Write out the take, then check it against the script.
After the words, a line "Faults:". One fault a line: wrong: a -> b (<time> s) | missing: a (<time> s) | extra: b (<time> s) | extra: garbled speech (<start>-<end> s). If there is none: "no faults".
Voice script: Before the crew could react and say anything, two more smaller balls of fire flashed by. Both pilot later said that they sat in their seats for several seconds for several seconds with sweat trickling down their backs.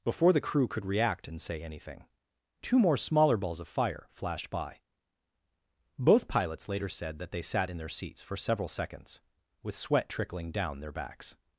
Before the crew could react and say anything, two more smaller balls of fire flashed by. Both pilots later said that they sat in their seats for several seconds with sweat trickling down their backs.
Faults:
wrong: pilot -> pilots (6.3 s)
missing: for several seconds (9.2 s)